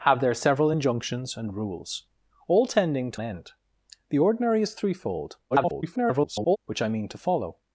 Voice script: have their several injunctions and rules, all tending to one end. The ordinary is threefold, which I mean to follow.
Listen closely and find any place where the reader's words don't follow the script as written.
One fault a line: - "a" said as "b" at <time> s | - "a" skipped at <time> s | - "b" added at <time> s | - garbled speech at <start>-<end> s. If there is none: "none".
- "one" skipped at 3.2 s
- garbled speech at 5.5-6.6 s